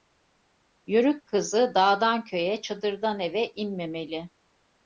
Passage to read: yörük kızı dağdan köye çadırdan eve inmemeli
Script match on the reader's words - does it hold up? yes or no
yes